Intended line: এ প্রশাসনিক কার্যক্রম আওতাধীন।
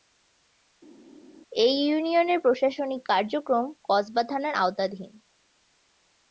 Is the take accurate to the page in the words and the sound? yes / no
no